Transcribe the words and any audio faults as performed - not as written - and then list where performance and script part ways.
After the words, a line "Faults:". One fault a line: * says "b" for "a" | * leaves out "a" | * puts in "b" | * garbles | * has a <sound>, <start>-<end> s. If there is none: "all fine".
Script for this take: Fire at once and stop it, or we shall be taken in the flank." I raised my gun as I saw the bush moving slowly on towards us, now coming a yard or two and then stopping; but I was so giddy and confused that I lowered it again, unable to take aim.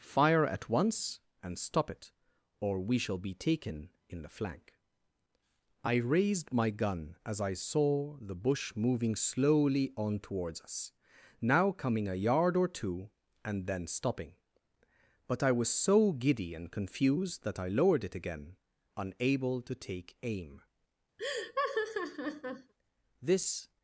Fire at once and stop it, or we shall be taken in the flank." I raised my gun as I saw the bush moving slowly on towards us, now coming a yard or two and then stopping; but I was so giddy and confused that I lowered it again, unable to take aim. This
Faults:
* has a laugh, 21.2-22.7 s
* puts in "This"